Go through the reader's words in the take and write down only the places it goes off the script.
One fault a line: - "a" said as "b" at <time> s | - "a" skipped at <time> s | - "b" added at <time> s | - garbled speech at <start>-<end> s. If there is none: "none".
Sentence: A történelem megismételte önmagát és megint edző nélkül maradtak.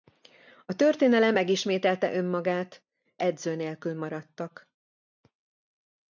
- "és megint" skipped at 2.9 s